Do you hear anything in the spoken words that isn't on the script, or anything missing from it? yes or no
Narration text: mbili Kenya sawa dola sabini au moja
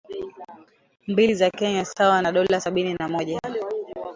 yes